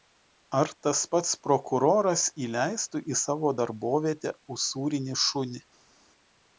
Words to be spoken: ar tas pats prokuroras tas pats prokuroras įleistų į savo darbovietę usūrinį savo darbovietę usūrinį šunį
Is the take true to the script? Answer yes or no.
no